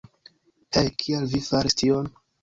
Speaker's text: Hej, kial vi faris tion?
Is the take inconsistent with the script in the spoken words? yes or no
no